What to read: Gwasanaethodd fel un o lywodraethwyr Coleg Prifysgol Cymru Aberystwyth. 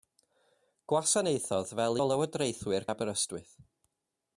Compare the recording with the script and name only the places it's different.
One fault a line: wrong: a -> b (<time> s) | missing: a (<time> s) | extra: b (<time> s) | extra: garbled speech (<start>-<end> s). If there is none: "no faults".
missing: un (2.0 s)
missing: Coleg Prifysgol Cymru (2.9 s)